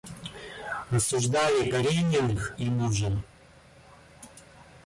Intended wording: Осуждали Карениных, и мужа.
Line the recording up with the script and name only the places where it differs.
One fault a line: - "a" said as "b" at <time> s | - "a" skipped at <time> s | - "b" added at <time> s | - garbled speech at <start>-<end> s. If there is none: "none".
none